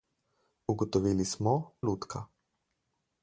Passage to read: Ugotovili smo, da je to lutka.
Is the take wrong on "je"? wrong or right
wrong